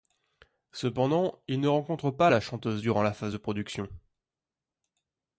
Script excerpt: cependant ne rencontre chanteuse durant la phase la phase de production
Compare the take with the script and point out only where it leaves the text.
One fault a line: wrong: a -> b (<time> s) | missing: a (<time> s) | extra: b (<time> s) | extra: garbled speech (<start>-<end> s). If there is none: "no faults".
extra: il (1.5 s)
extra: pas la (2.1 s)
missing: la phase (3.3 s)